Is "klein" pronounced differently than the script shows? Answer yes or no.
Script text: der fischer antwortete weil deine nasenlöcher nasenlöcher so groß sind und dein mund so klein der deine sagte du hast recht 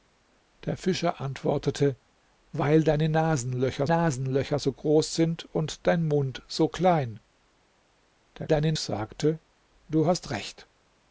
no